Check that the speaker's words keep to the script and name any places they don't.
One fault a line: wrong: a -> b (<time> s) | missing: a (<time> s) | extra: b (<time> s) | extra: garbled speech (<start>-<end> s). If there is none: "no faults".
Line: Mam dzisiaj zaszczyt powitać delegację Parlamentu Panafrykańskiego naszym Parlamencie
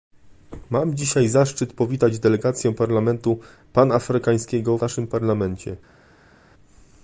no faults